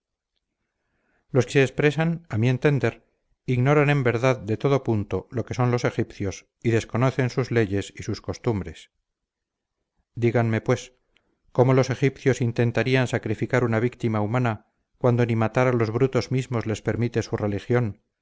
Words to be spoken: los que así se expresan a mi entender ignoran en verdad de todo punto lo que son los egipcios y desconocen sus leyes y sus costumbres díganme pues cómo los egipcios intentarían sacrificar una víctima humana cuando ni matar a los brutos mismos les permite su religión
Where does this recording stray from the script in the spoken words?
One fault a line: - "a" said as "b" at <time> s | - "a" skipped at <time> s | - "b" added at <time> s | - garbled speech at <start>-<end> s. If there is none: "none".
- "así" skipped at 1.5 s